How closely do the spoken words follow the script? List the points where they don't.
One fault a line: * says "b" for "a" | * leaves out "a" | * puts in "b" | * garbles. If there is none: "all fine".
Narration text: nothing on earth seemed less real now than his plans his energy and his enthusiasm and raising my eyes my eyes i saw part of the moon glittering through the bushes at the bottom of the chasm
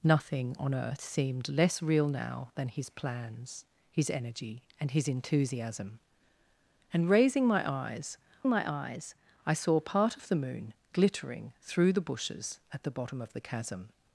all fine